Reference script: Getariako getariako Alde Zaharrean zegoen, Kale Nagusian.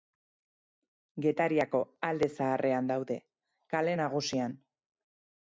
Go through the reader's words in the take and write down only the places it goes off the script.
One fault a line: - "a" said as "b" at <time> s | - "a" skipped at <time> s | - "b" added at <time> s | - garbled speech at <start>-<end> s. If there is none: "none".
- "getariako" skipped at 1.8 s
- "zegoen" said as "daude" at 2.9 s